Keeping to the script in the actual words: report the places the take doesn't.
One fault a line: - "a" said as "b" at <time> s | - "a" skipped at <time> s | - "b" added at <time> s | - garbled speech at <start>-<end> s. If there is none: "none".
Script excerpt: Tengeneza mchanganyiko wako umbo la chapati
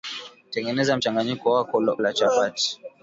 - "umbo" skipped at 1.8 s